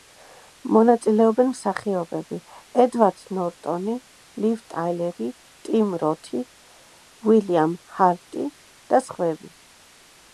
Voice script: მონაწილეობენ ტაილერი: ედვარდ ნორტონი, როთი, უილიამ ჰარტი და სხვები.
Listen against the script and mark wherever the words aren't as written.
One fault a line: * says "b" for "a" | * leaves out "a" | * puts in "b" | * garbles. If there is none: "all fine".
* says "მსახიობები" for "ტაილერი"
* puts in "ლივ ტაილერი ტიმ"